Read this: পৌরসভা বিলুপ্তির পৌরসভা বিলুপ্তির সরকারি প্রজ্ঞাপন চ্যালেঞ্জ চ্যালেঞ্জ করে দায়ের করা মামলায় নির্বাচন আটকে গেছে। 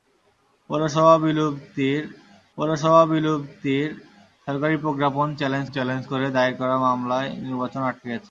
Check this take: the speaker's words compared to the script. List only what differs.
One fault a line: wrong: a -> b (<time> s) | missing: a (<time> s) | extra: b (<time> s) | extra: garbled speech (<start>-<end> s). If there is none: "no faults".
no faults